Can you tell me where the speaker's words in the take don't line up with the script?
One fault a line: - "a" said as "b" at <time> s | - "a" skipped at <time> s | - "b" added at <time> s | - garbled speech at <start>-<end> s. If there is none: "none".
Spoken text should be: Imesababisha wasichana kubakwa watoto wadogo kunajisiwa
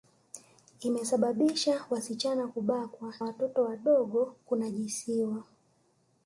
none